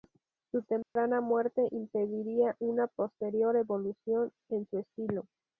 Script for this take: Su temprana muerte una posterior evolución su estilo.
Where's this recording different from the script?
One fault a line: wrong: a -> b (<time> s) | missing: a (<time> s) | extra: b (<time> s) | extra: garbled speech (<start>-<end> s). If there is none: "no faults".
extra: impediría (1.7 s)
extra: en (4.5 s)